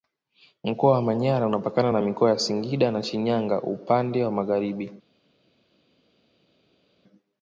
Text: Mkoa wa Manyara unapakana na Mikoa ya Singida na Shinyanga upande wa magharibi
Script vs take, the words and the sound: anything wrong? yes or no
no